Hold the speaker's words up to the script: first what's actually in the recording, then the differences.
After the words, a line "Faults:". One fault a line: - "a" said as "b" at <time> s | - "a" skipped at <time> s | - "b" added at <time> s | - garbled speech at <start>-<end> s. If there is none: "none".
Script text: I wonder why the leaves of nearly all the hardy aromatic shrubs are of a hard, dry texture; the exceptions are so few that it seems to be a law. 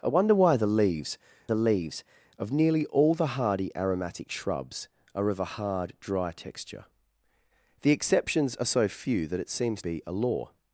I wonder why the leaves the leaves of nearly all the hardy aromatic shrubs are of a hard, dry texture; the exceptions are so few that it seems be a law.
Faults:
- "the leaves" added at 1.5 s
- "to" skipped at 9.8 s